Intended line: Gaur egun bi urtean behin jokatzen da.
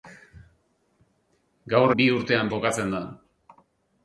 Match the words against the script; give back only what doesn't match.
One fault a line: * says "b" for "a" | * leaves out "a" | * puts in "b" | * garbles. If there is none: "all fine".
* leaves out "egun"
* leaves out "behin"